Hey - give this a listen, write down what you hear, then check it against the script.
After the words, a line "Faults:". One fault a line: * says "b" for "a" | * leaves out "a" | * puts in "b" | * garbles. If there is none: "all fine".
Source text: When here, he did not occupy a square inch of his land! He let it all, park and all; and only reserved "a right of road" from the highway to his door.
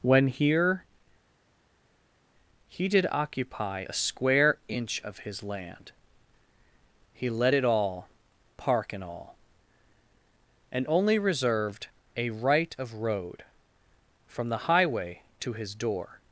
When here, he did occupy a square inch of his land! He let it all, park and all; and only reserved "a right of road" from the highway to his door.
Faults:
* leaves out "not"